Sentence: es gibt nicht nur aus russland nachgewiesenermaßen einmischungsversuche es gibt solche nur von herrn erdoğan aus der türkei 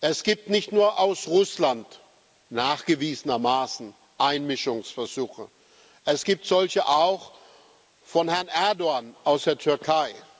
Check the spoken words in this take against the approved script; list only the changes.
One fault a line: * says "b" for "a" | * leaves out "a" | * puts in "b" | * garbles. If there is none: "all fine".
* says "auch" for "nur"